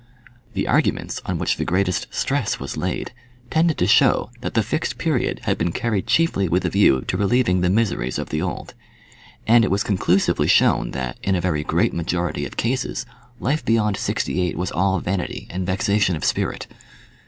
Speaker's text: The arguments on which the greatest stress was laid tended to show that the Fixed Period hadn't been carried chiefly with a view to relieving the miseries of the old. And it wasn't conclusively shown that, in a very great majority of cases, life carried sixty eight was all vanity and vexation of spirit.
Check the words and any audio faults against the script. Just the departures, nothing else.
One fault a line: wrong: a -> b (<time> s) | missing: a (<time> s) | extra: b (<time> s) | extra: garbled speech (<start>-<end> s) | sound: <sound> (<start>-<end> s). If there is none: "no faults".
wrong: hadn't -> had (5.4 s)
wrong: wasn't -> was (9.7 s)
wrong: carried -> beyond (13.6 s)